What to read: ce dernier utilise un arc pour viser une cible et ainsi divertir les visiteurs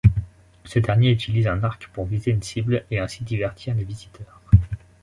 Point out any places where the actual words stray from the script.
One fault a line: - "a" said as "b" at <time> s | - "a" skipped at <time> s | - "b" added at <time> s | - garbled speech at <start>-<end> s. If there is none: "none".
none